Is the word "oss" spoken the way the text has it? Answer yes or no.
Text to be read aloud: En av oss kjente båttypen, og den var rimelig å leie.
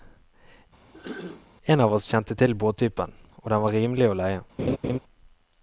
yes